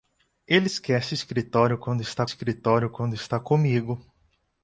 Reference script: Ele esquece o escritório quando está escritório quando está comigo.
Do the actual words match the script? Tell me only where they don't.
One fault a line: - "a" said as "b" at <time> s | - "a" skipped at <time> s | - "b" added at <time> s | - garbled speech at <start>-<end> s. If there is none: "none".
none